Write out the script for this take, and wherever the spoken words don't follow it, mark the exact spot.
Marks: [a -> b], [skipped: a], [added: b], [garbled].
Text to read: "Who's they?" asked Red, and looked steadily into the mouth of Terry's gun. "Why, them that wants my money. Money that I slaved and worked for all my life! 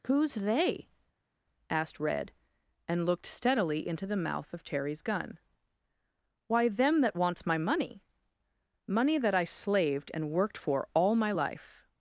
"Who's they?" asked Red, and looked steadily into the mouth of Terry's gun. "Why, them that wants my money. Money that I slaved and worked for all my life!